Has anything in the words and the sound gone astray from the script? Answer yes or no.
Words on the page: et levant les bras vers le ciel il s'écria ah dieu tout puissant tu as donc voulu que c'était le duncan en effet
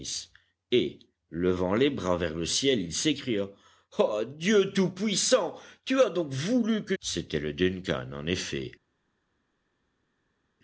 no